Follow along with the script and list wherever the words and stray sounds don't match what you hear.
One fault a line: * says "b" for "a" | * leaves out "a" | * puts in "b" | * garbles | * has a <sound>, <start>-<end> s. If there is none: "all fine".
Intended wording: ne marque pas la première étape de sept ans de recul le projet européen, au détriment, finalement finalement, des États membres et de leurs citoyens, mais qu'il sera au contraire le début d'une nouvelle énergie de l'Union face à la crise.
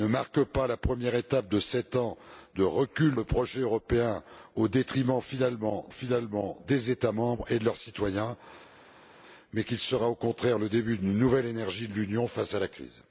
all fine